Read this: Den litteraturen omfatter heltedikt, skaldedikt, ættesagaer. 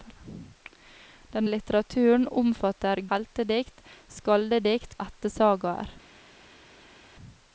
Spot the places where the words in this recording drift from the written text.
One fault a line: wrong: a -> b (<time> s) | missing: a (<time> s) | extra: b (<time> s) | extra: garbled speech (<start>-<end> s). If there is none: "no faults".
no faults